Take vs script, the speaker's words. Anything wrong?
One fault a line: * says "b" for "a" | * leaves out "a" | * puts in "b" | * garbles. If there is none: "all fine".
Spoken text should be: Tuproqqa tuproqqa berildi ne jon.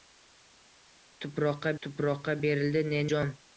all fine